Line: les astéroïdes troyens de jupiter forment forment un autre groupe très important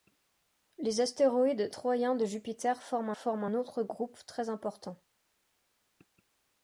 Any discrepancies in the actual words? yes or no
no